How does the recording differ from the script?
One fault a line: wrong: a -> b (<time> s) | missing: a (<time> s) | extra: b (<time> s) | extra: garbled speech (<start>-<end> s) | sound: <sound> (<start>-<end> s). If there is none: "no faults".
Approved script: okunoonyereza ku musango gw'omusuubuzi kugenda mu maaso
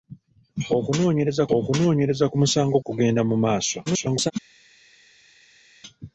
extra: okunoonyereza (1.6 s)
missing: gw'omusuubuzi (2.8 s)
extra: garbled speech (3.9-4.3 s)